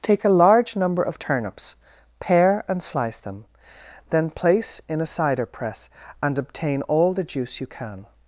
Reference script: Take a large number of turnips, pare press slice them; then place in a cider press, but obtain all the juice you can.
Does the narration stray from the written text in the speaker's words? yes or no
yes